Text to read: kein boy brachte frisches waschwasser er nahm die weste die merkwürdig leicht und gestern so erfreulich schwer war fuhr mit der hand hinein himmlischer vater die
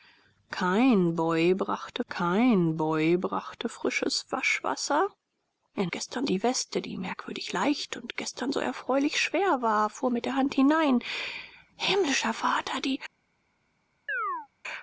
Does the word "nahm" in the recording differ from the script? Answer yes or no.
yes